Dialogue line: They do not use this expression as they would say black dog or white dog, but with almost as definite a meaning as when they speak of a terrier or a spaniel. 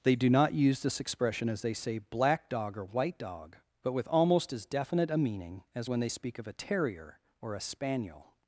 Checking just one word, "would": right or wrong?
wrong